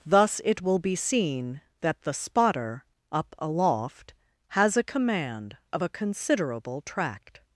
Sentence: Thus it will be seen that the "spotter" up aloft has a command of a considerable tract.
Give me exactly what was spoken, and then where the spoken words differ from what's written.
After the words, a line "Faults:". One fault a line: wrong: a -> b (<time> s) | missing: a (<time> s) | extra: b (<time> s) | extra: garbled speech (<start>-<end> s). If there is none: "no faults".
Thus it will be seen that the "spotter" up aloft has a command of a considerable tract.
Faults:
no faults